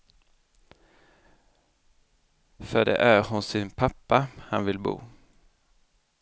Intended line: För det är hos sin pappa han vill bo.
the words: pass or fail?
pass